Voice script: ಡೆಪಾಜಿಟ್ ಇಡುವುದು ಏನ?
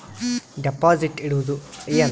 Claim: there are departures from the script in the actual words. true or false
false